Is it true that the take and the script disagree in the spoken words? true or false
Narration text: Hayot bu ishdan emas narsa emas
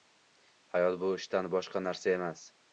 true